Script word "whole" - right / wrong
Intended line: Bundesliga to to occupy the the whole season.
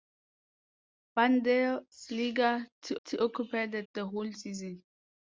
right